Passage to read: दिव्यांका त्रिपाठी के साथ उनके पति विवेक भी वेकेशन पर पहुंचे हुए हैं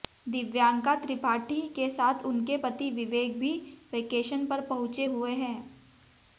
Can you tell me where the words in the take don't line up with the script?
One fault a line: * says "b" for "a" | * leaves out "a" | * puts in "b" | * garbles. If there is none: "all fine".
all fine